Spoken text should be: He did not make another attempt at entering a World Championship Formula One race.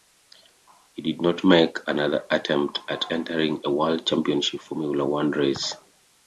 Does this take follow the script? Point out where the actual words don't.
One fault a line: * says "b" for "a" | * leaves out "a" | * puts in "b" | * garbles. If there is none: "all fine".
all fine